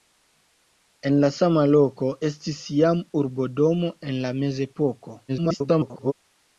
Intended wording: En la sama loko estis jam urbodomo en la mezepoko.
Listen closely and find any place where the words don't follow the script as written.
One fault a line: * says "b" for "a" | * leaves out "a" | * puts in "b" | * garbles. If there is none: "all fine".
* garbles